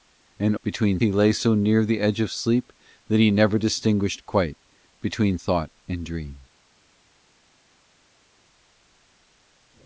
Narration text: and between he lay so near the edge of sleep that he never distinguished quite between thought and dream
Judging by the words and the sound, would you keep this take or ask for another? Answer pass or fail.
pass